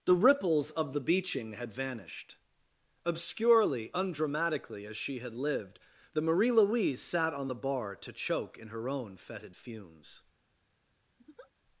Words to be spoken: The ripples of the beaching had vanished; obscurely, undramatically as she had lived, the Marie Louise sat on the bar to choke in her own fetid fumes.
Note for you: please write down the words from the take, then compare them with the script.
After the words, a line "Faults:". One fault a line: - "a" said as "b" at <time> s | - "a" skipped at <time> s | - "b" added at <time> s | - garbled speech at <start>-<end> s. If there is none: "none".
The ripples of the beaching had vanished; obscurely, undramatically as she had lived, the Marie Louise sat on the bar to choke in her own fetid fumes.
Faults:
none